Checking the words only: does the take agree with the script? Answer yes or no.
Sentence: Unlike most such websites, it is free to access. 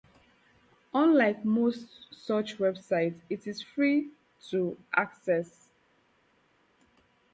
yes